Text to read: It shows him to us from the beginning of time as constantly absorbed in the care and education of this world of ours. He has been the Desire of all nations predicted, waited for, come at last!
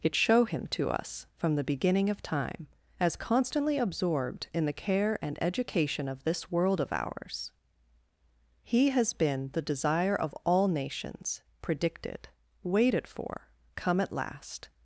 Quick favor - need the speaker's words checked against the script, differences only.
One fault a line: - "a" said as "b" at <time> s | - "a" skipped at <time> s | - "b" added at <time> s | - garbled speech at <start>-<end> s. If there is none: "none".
- "shows" said as "show" at 0.1 s